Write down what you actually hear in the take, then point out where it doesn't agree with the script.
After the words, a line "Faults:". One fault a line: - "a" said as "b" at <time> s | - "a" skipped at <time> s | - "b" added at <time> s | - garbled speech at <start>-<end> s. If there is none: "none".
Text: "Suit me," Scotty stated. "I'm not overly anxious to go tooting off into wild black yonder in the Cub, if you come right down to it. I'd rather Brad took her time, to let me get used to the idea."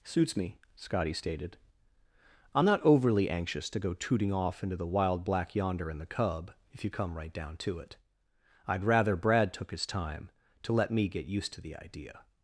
"Suits me," Scotty stated. "I'm not overly anxious to go tooting off into the wild black yonder in the Cub, if you come right down to it. I'd rather Brad took his time, to let me get used to the idea."
Faults:
- "Suit" said as "Suits" at 0.0 s
- "the" added at 4.8 s
- "her" said as "his" at 9.7 s